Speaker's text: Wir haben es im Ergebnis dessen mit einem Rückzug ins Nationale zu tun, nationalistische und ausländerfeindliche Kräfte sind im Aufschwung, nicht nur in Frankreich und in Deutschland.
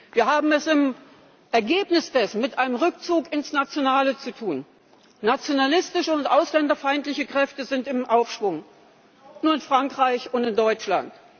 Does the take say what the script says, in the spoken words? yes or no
no